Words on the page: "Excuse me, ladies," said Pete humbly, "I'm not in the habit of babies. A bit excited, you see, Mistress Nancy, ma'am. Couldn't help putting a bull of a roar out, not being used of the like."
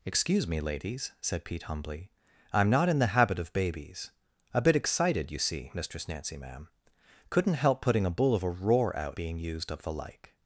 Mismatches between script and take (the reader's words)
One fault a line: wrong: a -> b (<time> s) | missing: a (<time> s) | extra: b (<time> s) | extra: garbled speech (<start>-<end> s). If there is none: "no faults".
missing: not (9.2 s)